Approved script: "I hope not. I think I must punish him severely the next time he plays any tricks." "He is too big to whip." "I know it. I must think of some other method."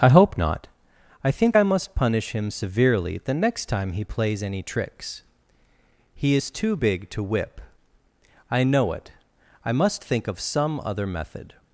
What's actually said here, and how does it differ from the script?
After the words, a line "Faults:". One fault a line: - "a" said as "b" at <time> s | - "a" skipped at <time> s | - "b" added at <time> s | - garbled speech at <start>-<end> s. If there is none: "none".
"I hope not. I think I must punish him severely the next time he plays any tricks." "He is too big to whip." "I know it. I must think of some other method."
Faults:
none